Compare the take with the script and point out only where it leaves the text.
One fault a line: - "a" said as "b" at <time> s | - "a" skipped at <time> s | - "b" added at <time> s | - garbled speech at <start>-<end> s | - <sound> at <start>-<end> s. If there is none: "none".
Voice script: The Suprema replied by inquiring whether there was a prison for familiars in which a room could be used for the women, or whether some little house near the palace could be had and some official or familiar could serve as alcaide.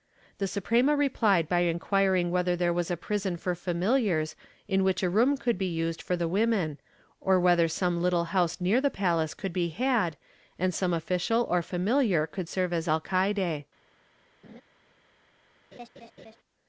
- laugh at 14.4-14.6 s
- laugh at 15.7-16.4 s